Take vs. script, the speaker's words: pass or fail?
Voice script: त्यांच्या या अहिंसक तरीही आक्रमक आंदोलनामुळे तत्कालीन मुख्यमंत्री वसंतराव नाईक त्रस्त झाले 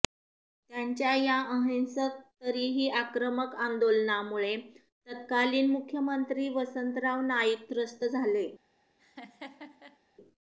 pass